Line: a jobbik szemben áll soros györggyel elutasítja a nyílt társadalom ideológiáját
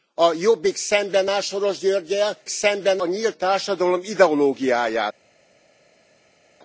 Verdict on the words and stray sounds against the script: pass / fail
fail